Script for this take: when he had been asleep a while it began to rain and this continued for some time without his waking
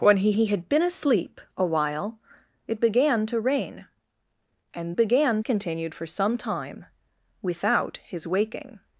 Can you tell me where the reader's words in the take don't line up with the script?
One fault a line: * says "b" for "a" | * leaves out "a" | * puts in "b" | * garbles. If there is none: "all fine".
* puts in "he"
* says "began" for "this"